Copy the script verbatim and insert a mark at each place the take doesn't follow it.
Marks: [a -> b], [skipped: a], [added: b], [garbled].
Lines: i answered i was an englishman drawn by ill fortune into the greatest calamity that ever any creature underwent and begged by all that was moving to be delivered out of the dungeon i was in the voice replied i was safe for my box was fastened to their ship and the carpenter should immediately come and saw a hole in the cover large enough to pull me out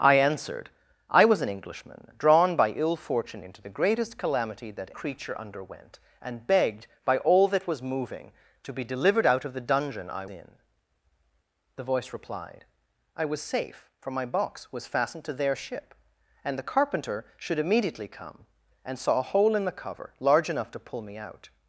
i answered i was an englishman drawn by ill fortune into the greatest calamity that [skipped: ever any] creature underwent and begged by all that was moving to be delivered out of the dungeon i [skipped: was] in the voice replied i was safe for my box was fastened to their ship and the carpenter should immediately come and saw a hole in the cover large enough to pull me out